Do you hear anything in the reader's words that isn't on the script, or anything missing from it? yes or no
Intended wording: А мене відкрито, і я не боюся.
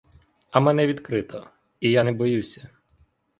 no